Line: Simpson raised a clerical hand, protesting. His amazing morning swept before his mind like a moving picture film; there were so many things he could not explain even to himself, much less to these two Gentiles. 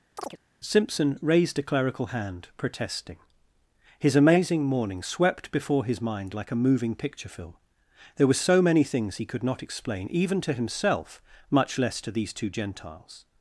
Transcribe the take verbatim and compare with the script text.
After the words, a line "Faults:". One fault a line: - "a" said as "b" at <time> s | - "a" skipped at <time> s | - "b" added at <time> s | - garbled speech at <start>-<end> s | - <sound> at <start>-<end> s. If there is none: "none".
Simpson raised a clerical hand, protesting. His amazing morning swept before his mind like a moving picture film; there were so many things he could not explain even to himself, much less to these two Gentiles.
Faults:
- chirp at 0.2-0.4 s